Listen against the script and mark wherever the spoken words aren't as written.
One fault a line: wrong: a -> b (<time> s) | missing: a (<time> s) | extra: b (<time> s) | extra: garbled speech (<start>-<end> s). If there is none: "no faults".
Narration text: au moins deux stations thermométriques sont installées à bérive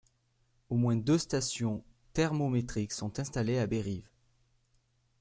no faults